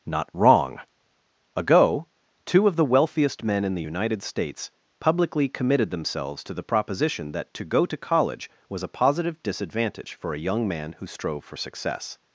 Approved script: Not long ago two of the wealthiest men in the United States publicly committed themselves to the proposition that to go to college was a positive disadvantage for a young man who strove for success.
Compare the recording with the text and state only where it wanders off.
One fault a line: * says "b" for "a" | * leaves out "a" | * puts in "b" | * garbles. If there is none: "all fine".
* says "wrong" for "long"